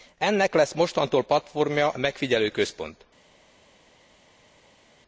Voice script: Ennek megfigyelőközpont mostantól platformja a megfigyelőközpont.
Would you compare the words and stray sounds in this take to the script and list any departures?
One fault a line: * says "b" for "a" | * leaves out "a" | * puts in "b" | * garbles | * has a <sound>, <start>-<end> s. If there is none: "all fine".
* says "lesz" for "megfigyelőközpont"